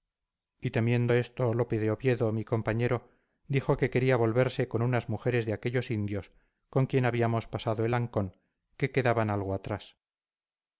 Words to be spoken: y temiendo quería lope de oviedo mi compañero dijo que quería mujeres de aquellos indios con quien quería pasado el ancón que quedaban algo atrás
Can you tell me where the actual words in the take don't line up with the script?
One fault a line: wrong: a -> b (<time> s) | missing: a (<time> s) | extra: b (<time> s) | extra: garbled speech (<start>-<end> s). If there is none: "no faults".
wrong: quería -> esto (1.1 s)
extra: volverse con unas (4.2 s)
wrong: quería -> habíamos (7.0 s)